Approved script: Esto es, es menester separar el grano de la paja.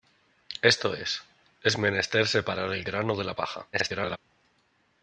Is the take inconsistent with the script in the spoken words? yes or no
yes